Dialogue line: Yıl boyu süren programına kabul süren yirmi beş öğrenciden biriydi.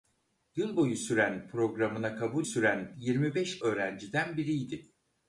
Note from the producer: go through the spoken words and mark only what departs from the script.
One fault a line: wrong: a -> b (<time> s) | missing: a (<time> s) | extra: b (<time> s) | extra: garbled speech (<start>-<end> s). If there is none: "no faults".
no faults